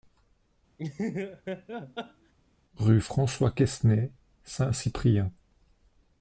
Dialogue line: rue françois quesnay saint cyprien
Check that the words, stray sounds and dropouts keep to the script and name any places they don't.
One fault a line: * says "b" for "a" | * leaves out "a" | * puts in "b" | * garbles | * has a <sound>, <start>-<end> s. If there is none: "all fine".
* has a laugh, 0.8-2.3 s